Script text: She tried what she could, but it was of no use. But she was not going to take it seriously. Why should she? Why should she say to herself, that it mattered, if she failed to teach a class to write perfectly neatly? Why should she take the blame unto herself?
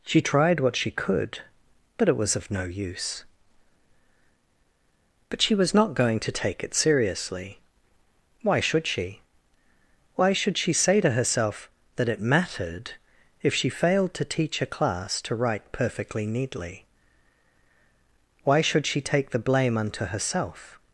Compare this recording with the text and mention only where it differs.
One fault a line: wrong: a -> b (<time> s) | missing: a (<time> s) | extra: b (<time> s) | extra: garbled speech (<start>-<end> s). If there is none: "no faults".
no faults